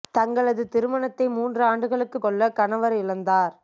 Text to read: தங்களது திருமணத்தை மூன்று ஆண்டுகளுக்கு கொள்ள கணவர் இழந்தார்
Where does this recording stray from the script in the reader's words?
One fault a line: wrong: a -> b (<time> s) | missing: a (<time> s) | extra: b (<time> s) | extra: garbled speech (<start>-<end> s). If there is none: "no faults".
no faults